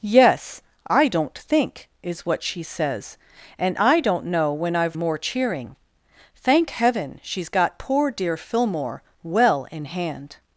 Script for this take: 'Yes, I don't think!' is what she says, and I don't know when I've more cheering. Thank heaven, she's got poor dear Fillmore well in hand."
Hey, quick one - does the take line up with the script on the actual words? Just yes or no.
yes